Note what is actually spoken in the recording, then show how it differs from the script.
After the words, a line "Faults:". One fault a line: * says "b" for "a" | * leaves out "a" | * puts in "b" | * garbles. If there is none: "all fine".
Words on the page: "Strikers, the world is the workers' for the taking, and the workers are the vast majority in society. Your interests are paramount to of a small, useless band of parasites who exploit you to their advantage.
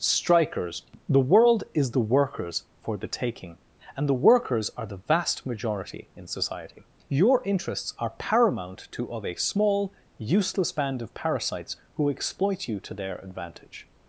"Strikers, the world is the workers' for the taking, and the workers are the vast majority in society. Your interests are paramount to of a small, useless band of parasites who exploit you to their advantage.
Faults:
all fine